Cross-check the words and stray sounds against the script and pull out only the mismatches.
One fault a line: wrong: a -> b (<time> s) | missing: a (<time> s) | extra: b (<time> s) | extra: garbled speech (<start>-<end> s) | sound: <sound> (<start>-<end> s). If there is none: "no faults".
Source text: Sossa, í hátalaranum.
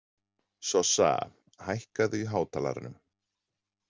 extra: hækkaðu (1.7 s)